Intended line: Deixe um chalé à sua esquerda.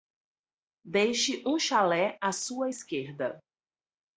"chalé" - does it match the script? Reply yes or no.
yes